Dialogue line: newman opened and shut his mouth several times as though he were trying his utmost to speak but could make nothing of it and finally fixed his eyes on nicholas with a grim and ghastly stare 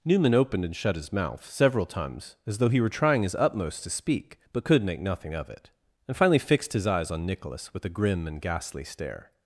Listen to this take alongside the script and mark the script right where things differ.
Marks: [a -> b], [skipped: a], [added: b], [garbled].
newman opened and shut his mouth several times as though he were trying his utmost to speak but could make nothing of it and finally fixed his eyes on nicholas with a grim and ghastly stare